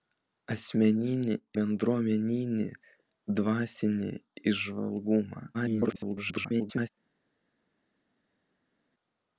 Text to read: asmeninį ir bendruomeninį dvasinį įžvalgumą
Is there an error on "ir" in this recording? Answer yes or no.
yes